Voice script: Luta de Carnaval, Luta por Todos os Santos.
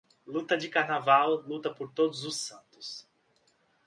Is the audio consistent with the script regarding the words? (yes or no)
yes